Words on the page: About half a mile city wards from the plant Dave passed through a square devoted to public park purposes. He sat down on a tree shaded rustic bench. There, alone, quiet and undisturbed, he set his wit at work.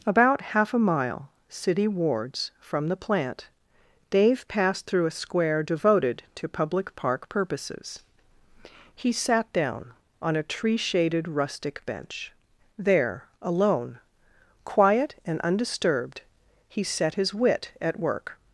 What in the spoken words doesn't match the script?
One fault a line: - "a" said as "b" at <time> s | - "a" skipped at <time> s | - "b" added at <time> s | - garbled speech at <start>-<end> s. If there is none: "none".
none